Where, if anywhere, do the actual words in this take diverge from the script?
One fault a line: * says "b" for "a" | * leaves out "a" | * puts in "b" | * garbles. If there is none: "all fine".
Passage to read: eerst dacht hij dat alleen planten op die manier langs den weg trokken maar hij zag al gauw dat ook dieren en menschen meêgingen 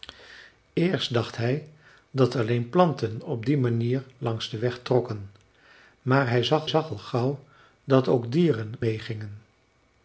* puts in "zag"
* leaves out "en menschen"